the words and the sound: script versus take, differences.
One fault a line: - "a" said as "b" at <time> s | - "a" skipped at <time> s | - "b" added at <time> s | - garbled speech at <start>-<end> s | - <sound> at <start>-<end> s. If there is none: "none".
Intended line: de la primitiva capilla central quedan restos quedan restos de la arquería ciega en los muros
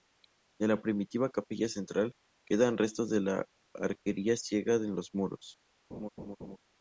- "quedan restos" skipped at 3.1 s
- laugh at 5.9-6.6 s